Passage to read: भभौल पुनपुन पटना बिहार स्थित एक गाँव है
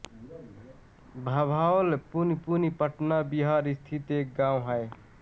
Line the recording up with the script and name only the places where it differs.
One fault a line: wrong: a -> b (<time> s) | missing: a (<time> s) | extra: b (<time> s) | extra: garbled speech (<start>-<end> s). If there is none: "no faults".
no faults